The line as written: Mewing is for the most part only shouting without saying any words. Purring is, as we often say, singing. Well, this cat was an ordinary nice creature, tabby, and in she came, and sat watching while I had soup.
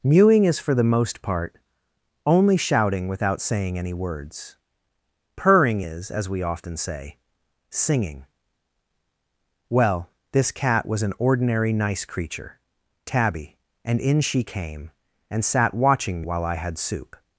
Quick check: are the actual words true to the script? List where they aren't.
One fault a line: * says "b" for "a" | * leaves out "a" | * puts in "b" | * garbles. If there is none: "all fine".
all fine